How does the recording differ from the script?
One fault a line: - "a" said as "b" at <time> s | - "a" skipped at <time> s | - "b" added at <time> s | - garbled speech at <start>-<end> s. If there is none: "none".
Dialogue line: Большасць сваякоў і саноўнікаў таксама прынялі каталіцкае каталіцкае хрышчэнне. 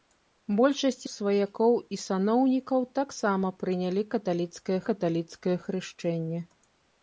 none